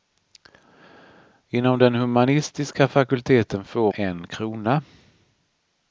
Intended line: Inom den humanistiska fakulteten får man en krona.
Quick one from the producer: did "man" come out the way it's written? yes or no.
no